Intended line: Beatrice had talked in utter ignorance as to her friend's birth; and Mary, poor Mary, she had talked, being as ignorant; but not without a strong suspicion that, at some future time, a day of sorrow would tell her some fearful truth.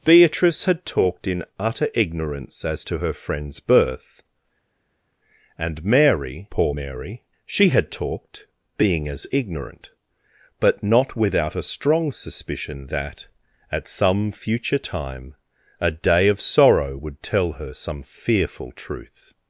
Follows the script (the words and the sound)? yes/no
yes